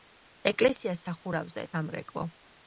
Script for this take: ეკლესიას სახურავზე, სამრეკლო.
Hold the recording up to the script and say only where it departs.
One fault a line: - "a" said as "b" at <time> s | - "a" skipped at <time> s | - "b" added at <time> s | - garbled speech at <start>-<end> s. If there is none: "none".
none